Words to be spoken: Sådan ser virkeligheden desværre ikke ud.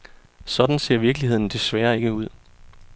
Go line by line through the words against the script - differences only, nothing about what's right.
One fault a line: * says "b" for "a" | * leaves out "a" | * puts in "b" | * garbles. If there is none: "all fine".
all fine